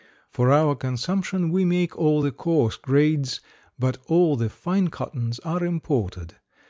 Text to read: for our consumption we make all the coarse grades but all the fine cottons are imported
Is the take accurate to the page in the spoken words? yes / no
yes